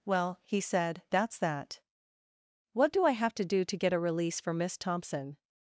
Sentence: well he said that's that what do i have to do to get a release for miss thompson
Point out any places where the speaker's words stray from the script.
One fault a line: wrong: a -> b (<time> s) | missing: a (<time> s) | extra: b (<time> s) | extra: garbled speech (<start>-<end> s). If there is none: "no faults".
no faults